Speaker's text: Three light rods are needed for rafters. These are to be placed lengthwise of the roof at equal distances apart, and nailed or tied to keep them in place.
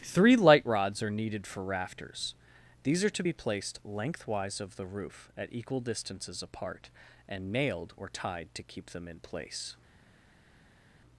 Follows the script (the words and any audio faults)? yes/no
yes